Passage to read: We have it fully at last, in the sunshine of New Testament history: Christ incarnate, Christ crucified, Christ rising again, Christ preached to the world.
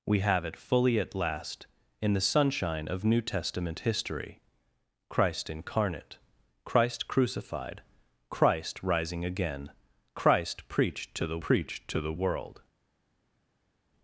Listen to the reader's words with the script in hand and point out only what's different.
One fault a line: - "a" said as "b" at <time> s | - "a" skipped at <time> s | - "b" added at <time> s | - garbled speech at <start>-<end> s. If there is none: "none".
- "preached to the" added at 11.4 s